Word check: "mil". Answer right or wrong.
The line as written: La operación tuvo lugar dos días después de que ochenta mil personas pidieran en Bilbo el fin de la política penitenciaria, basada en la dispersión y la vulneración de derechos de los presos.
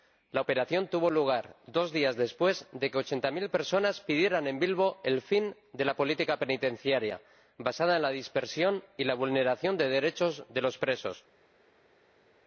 right